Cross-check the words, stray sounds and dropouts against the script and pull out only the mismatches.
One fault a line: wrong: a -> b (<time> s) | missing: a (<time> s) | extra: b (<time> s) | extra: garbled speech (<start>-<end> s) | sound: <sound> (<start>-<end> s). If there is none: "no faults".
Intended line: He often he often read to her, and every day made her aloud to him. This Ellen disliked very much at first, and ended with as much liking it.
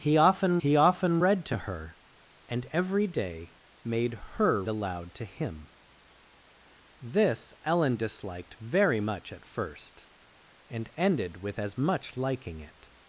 no faults